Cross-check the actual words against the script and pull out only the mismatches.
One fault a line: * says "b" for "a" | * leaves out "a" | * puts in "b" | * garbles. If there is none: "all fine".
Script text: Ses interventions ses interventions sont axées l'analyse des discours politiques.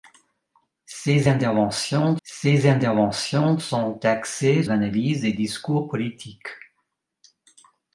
all fine